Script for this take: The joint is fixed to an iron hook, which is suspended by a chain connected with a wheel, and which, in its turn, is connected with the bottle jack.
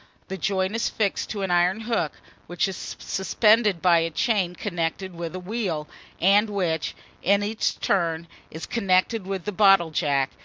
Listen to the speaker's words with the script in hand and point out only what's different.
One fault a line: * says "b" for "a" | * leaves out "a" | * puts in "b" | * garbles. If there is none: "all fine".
all fine